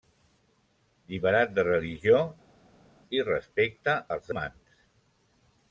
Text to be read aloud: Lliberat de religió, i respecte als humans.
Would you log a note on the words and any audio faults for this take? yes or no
no